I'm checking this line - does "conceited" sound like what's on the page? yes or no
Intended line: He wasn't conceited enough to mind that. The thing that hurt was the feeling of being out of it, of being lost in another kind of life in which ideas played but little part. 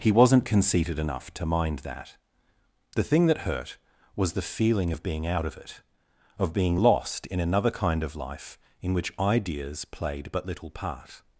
yes